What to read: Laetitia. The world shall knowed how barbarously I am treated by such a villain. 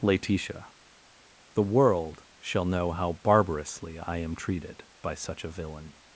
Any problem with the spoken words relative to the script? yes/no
yes